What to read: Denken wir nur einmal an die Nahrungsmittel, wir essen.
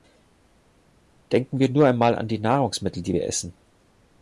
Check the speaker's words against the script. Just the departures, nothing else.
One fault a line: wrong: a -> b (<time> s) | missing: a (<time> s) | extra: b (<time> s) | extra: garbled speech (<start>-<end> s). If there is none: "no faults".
extra: die (3.0 s)